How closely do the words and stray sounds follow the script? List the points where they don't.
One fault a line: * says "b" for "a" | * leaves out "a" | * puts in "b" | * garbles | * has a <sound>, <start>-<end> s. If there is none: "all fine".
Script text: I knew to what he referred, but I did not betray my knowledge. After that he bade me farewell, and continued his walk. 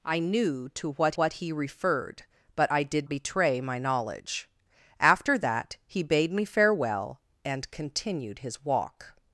* puts in "what"
* leaves out "not"